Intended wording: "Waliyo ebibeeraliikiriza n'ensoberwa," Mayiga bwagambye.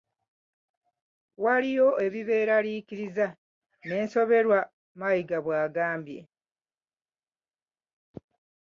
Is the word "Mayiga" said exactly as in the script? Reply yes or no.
yes